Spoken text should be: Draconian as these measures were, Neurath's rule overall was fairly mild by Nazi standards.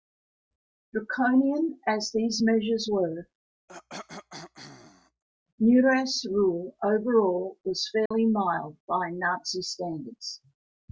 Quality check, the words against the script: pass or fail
pass